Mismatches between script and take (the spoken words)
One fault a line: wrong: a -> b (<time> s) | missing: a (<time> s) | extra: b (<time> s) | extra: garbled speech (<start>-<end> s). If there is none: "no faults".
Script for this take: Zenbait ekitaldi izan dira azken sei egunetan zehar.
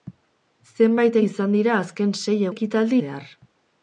missing: ekitaldi (1.2 s)
wrong: egunetan -> ekitaldi (2.5 s)